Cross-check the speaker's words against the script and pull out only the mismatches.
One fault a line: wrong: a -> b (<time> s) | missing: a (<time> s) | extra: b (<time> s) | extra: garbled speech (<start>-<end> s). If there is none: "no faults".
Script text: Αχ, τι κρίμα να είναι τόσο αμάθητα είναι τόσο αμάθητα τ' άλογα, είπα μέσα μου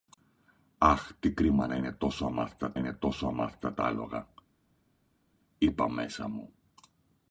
no faults